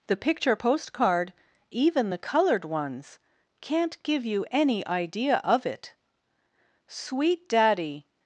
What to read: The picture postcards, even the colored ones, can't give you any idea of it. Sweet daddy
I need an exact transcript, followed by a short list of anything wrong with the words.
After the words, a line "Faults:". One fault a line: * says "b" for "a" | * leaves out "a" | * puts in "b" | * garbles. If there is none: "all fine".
The picture postcard, even the colored ones, can't give you any idea of it. Sweet daddy
Faults:
* says "postcard" for "postcards"